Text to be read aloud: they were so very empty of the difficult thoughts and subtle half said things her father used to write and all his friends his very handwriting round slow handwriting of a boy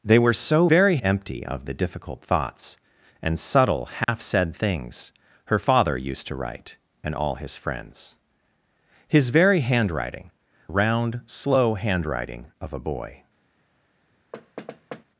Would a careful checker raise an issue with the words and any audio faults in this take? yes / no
yes